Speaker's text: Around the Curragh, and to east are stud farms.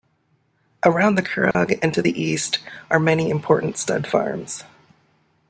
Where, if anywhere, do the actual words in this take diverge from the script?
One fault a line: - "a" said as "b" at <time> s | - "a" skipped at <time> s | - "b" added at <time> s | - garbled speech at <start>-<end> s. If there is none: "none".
- "the" added at 2.0 s
- "many important" added at 3.0 s